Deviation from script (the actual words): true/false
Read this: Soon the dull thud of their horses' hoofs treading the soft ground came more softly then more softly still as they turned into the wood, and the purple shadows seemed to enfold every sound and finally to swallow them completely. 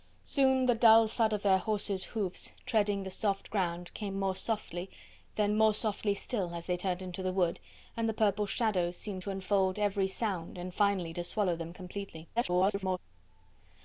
true